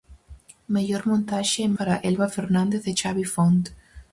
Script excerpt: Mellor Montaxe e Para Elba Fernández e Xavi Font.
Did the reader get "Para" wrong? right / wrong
right